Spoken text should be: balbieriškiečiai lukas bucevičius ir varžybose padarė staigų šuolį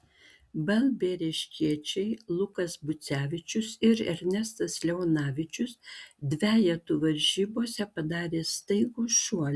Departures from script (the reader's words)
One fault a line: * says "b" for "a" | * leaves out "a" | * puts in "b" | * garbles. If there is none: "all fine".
* puts in "ernestas leonavičius dvejetų"